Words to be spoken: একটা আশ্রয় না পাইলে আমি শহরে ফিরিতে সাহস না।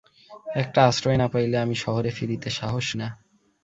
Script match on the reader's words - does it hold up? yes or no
yes